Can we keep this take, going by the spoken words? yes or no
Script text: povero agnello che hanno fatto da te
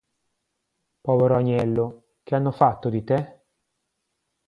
no